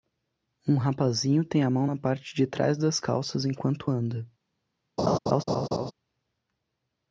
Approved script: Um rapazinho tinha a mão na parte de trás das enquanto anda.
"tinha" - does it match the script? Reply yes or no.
no